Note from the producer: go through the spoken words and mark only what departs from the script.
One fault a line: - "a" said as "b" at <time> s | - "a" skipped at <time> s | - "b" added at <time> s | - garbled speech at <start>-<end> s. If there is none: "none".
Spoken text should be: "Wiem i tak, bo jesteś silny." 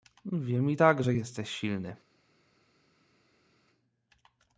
- "bo" said as "że" at 1.0 s